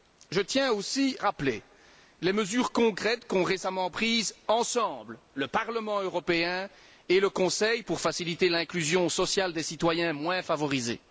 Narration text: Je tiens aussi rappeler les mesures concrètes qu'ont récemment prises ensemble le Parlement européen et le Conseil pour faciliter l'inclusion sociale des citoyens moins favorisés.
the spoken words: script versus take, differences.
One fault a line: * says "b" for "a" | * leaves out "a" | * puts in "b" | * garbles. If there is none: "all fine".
all fine